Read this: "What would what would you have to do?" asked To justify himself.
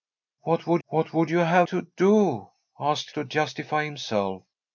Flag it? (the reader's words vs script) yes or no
no